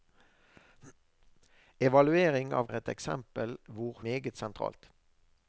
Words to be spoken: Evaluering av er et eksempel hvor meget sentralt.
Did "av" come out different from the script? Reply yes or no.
no